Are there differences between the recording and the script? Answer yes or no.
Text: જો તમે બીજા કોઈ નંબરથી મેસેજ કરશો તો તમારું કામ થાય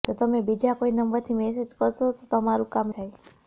no